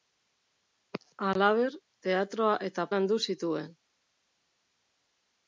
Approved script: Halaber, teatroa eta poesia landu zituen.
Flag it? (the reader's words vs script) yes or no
yes